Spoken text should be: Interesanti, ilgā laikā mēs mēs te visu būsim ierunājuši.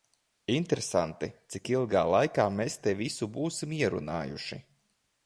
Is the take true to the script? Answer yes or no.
no